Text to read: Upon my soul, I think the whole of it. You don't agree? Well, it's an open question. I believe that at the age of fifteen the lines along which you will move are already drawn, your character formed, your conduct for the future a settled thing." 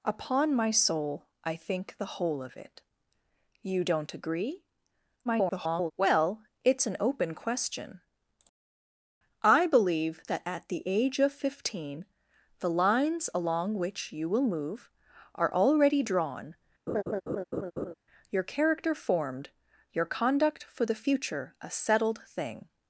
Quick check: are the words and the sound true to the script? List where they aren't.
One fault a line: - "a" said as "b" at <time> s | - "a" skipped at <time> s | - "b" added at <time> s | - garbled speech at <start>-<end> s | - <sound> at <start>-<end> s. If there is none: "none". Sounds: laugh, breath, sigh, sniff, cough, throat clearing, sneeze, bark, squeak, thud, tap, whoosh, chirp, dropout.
- garbled speech at 5.3-5.9 s
- laugh at 16.9-17.9 s